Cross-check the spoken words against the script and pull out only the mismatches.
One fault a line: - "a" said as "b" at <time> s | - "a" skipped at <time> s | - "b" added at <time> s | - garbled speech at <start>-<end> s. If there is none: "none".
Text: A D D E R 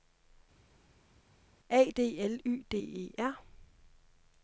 - "L Y" added at 2.2 s